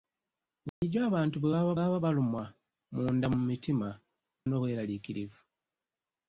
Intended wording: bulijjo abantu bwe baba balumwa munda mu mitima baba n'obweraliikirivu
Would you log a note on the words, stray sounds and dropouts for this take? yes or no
yes